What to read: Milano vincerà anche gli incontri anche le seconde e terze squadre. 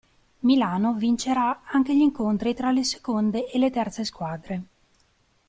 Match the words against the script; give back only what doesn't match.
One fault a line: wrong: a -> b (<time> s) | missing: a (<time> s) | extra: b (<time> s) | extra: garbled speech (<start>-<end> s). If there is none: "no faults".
wrong: anche -> tra (2.5 s)
extra: le (3.6 s)